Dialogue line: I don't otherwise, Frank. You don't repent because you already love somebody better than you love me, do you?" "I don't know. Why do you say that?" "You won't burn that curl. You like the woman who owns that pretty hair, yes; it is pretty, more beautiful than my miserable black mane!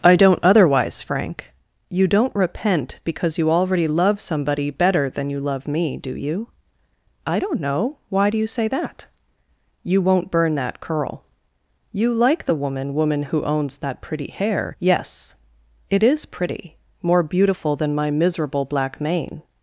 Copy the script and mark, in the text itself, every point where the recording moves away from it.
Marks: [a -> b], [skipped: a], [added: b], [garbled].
I don't otherwise, Frank. You don't repent because you already love somebody better than you love me, do you?" "I don't know. Why do you say that?" "You won't burn that curl. You like the woman [added: woman] who owns that pretty hair, yes; it is pretty, more beautiful than my miserable black mane!